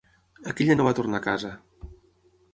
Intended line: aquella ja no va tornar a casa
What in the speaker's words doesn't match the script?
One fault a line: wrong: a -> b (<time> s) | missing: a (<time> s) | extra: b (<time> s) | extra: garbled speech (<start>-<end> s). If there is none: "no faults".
no faults